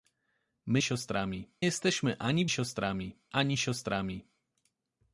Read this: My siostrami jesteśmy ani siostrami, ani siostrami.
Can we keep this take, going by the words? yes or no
yes